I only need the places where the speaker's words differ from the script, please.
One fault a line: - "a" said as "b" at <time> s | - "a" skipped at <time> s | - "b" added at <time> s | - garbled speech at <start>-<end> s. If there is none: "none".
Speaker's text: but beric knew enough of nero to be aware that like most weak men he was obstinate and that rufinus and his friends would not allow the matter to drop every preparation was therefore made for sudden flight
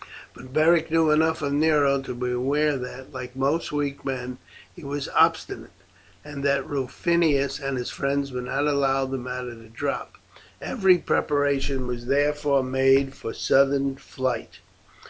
none